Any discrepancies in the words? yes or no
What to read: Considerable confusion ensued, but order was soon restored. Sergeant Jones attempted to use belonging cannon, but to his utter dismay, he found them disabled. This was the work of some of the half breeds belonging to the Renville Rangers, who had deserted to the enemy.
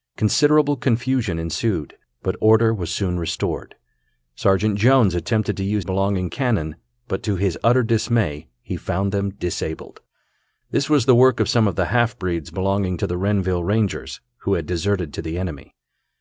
no